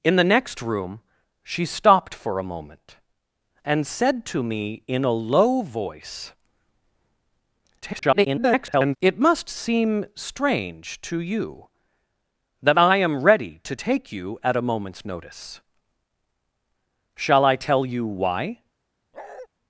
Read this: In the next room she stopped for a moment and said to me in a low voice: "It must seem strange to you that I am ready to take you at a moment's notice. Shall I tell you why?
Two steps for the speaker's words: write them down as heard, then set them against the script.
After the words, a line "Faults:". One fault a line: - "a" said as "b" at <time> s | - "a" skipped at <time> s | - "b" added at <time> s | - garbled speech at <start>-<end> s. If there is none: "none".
In the next room she stopped for a moment and said to me in a low voice: [garbled] "It must seem strange to you that I am ready to take you at a moment's notice. Shall I tell you why?
Faults:
- garbled speech at 7.8-9.0 s